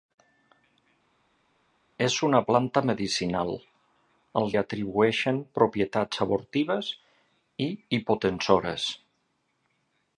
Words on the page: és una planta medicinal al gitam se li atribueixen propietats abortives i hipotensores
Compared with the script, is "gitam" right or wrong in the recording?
wrong